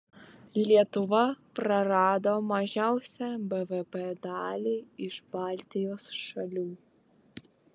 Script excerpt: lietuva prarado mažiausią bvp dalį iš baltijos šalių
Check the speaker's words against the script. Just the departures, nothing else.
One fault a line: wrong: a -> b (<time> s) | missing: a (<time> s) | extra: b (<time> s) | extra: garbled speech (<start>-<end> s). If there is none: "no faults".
no faults